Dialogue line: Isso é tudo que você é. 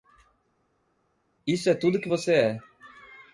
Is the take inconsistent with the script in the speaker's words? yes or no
no